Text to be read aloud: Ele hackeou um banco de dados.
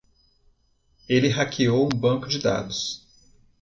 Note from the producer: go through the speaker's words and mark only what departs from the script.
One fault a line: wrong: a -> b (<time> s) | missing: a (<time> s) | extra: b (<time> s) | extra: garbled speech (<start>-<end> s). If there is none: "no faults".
no faults